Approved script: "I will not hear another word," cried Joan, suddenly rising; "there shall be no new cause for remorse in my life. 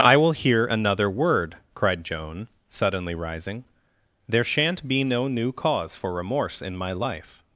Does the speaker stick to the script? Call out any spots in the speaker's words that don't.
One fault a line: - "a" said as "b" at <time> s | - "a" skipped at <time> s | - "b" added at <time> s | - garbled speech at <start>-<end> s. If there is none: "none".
- "not" skipped at 0.3 s
- "shall" said as "shan't" at 4.4 s